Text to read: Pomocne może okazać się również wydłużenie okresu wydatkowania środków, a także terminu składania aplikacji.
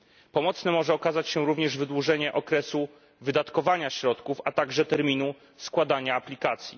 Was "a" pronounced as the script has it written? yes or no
yes